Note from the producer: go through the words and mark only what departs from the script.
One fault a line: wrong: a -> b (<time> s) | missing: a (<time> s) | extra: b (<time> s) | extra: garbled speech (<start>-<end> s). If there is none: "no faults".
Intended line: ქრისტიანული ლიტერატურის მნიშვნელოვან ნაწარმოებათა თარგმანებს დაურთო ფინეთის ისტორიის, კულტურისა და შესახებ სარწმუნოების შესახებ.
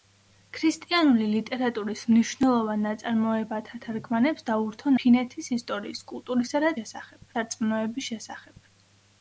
no faults